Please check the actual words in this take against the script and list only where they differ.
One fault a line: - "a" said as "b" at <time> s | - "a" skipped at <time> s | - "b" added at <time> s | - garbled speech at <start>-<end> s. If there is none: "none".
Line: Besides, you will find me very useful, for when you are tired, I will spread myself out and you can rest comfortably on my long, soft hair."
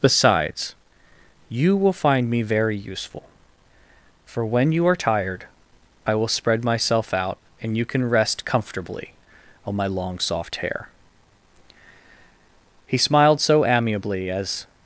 - "He smiled so amiably as" added at 12.9 s